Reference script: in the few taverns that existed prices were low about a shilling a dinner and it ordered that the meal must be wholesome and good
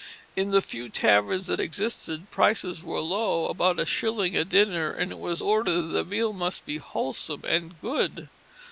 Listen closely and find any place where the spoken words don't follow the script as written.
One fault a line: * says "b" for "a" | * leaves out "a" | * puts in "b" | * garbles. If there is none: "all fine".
* puts in "was"